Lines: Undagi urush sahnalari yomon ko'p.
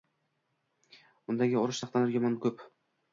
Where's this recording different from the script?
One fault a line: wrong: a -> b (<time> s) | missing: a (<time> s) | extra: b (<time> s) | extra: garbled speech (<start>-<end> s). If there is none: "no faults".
no faults